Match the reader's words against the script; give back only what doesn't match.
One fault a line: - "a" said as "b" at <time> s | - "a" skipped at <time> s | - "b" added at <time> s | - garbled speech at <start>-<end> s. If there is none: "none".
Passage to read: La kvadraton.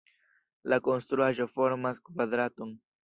- "konstruaĵo formas" added at 0.9 s